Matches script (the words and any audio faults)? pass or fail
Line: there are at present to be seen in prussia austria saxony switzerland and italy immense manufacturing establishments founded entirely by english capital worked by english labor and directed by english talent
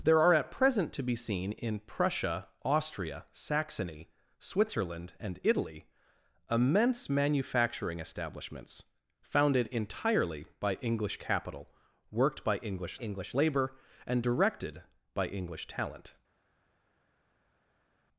fail